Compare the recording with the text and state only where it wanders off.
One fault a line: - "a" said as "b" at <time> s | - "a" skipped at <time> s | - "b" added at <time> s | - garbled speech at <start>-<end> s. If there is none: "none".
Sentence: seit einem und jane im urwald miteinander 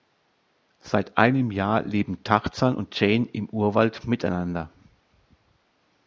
- "jahr leben tarzan" added at 1.5 s